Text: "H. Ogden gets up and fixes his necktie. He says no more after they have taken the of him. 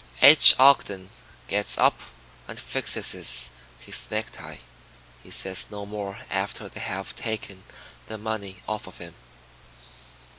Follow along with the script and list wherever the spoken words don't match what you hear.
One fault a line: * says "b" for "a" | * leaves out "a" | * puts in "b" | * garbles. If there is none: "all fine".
* puts in "money off"